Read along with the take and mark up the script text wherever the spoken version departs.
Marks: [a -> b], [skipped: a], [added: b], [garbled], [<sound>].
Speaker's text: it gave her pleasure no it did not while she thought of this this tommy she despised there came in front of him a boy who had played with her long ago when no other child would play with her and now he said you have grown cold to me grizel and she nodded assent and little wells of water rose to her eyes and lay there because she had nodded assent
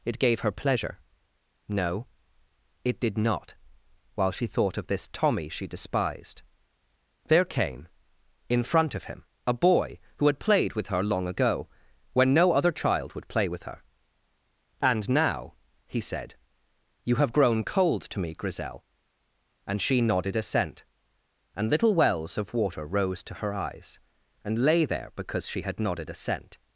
it gave her pleasure no it did not while she thought of this [skipped: this] tommy she despised there came in front of him a boy who had played with her long ago when no other child would play with her and now he said you have grown cold to me grizel and she nodded assent and little wells of water rose to her eyes and lay there because she had nodded assent